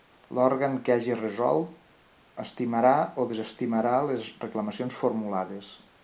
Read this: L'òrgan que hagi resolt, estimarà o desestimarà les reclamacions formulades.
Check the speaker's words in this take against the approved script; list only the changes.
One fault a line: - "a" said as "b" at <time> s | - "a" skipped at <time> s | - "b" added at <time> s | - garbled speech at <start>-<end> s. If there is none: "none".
none